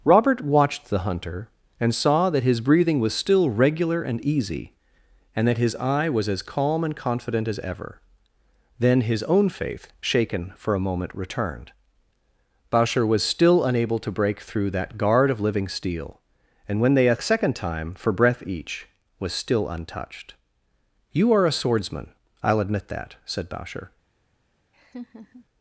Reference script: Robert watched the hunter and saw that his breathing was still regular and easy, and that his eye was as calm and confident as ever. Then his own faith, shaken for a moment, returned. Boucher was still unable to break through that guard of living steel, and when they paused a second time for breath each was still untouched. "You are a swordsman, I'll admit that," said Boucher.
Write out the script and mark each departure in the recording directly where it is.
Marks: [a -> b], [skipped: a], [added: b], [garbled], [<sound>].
Robert watched the hunter and saw that his breathing was still regular and easy, and that his eye was as calm and confident as ever. Then his own faith, shaken for a moment, returned. Boucher was still unable to break through that guard of living steel, and when they [skipped: paused] a second time for breath each was still untouched. "You are a swordsman, I'll admit that," said Boucher. [laugh]